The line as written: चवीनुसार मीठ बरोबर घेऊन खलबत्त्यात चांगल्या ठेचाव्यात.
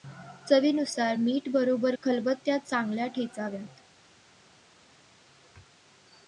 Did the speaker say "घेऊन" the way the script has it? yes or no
no